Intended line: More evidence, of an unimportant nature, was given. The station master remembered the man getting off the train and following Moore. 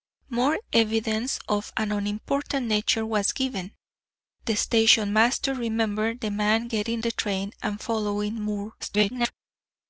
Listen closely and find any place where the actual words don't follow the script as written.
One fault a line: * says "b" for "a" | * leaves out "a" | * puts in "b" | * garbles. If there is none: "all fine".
* leaves out "off"
* garbles